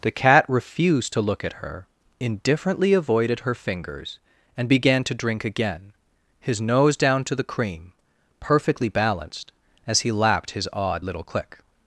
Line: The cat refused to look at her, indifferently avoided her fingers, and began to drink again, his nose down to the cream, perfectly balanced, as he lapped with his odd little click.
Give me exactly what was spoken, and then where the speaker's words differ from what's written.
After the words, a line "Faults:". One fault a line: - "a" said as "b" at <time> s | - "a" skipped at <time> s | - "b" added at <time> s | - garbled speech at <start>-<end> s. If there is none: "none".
The cat refused to look at her, indifferently avoided her fingers, and began to drink again, his nose down to the cream, perfectly balanced, as he lapped his odd little click.
Faults:
- "with" skipped at 10.5 s